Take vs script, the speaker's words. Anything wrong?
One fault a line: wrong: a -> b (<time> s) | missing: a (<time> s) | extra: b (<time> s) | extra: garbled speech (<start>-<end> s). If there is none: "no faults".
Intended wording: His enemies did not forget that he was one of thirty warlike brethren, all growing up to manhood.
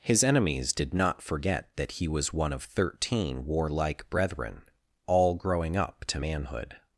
wrong: thirty -> thirteen (2.6 s)